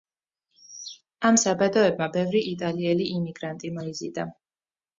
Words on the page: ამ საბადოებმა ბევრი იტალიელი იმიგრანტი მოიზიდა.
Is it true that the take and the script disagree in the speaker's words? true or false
false